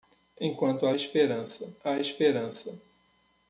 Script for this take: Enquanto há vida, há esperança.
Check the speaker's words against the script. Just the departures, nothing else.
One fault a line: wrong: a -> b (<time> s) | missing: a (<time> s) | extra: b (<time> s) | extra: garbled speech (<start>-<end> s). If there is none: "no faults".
wrong: vida -> esperança (0.9 s)